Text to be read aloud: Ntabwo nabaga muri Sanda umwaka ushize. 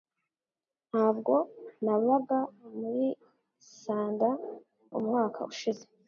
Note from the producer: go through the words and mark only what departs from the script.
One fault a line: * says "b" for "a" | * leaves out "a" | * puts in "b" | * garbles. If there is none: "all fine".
all fine